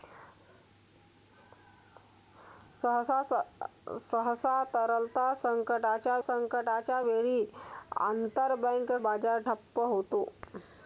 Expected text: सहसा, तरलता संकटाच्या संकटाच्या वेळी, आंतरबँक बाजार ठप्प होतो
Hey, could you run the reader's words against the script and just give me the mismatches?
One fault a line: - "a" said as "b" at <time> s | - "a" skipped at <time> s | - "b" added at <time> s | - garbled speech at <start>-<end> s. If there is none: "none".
none